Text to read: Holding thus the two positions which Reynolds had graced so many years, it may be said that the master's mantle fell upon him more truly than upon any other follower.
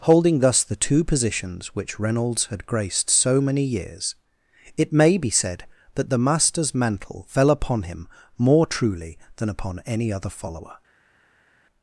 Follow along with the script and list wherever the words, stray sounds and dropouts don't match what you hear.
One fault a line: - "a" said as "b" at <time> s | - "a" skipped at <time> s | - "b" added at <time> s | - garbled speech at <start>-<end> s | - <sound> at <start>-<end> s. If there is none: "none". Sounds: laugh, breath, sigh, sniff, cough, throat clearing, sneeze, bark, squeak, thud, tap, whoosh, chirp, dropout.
none